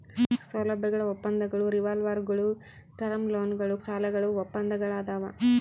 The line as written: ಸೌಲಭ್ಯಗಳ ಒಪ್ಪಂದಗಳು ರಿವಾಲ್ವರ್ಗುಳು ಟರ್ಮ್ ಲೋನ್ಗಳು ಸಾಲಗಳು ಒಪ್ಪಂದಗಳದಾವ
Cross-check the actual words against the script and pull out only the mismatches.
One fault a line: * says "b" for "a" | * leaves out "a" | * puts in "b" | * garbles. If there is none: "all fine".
all fine